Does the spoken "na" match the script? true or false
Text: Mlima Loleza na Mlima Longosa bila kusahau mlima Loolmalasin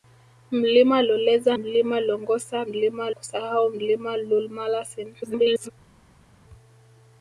false